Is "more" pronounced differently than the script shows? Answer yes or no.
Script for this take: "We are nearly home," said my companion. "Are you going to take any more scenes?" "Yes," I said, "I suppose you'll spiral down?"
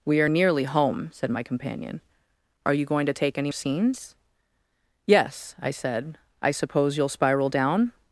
yes